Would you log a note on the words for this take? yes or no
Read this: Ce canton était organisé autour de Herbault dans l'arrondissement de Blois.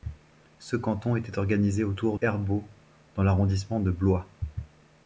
yes